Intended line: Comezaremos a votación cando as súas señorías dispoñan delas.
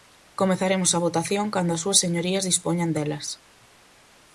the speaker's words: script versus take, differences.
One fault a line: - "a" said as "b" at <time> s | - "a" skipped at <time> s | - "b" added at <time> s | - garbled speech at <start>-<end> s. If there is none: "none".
none